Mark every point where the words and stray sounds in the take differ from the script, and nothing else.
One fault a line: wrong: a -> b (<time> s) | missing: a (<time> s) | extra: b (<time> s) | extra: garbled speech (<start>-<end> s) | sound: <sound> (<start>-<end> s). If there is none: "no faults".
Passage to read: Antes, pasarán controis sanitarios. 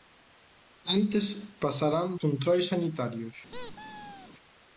sound: squeak (3.5-4.3 s)